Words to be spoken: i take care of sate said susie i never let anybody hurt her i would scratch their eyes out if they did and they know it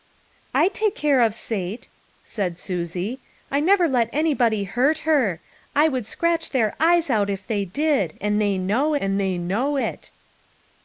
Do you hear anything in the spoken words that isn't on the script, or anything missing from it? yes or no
yes